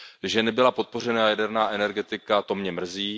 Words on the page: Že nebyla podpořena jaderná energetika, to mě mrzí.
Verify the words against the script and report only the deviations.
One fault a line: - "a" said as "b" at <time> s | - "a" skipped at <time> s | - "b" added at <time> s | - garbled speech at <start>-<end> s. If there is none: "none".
none